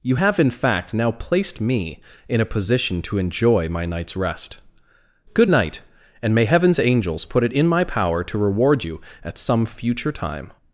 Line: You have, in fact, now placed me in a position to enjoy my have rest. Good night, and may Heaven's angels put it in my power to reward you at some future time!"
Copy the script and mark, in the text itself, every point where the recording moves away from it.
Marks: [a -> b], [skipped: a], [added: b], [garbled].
You have, in fact, now placed me in a position to enjoy my [have -> night's] rest. Good night, and may Heaven's angels put it in my power to reward you at some future time!"